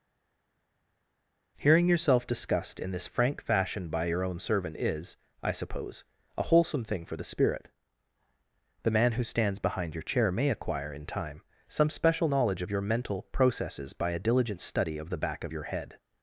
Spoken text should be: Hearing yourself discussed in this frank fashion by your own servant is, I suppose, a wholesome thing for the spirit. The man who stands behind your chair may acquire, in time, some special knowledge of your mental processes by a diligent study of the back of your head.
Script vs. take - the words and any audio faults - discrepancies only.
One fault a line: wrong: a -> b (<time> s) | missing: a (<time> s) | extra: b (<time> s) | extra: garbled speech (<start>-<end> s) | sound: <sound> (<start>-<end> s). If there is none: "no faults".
no faults